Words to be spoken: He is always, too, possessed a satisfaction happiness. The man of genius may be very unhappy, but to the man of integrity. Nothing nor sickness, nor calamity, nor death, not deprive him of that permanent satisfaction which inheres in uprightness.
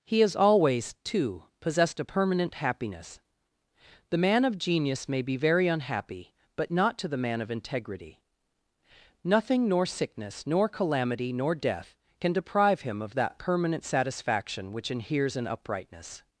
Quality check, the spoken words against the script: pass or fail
fail